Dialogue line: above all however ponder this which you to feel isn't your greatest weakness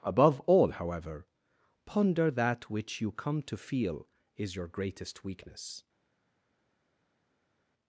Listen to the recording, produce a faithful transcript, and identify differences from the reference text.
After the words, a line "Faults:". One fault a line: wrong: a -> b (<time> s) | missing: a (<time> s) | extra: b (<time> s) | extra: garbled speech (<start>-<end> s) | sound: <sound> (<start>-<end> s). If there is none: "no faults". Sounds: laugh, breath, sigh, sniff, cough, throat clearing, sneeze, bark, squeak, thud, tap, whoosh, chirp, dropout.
above all however ponder that which you come to feel is your greatest weakness
Faults:
wrong: this -> that (2.3 s)
extra: come (3.1 s)
wrong: isn't -> is (4.3 s)